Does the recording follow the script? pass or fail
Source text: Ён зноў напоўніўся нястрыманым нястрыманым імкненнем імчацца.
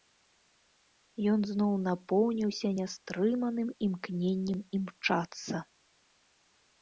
fail